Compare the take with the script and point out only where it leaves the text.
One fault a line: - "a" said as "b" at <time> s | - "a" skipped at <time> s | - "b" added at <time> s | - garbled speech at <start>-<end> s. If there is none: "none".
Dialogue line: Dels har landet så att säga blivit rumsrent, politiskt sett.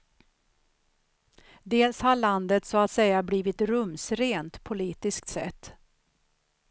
none